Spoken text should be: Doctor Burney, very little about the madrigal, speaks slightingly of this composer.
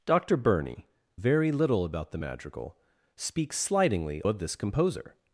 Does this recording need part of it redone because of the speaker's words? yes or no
no